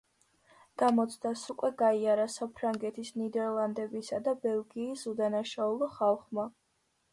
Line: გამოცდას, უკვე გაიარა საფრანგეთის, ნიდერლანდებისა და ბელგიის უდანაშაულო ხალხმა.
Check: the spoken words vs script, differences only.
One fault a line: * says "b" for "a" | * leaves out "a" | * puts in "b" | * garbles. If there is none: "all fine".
all fine